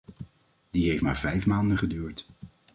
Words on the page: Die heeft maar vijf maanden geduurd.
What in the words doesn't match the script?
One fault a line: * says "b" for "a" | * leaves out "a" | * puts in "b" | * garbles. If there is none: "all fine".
all fine